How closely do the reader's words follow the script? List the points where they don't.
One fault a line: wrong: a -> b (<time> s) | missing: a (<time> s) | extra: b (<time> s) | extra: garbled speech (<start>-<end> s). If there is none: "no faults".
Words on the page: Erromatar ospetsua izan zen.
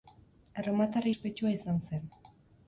no faults